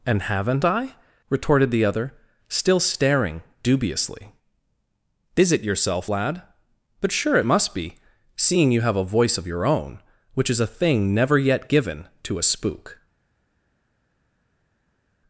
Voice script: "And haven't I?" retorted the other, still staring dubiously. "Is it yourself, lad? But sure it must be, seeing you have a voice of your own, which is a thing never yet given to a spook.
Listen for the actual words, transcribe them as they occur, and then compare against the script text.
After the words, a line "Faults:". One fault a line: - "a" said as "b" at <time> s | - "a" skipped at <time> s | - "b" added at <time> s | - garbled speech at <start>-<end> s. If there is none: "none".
"And haven't I?" retorted the other, still staring dubiously. "Is it yourself, lad? But sure it must be, seeing you have a voice of your own, which is a thing never yet given to a spook.
Faults:
none